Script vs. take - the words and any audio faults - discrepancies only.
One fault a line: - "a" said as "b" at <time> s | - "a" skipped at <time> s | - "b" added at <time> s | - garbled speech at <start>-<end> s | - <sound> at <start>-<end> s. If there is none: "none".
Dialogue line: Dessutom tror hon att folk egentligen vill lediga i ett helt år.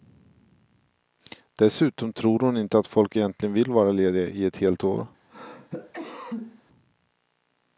- "inte" added at 2.6 s
- "vara" added at 3.7 s
- cough at 5.3-6.6 s